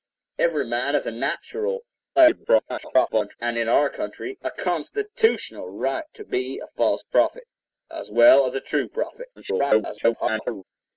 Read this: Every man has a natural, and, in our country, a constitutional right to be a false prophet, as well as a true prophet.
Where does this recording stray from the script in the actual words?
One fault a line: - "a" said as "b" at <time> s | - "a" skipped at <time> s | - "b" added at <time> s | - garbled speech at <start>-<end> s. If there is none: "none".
- garbled speech at 2.2-3.4 s
- garbled speech at 9.4-10.6 s